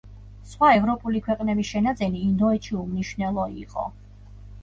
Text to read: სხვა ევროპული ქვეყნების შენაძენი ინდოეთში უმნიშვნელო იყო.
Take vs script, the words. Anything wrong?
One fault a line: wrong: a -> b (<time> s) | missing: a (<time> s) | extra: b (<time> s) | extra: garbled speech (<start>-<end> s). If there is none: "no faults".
no faults